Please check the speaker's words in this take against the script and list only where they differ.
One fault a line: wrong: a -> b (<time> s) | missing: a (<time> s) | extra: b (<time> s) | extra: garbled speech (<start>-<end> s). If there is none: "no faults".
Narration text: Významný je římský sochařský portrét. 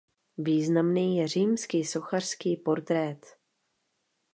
no faults